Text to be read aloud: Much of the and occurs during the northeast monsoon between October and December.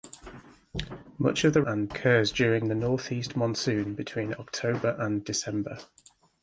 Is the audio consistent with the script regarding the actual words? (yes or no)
yes